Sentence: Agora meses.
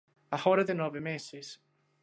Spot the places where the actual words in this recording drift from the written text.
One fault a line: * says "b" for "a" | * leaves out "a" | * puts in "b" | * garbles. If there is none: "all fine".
* puts in "ten nove"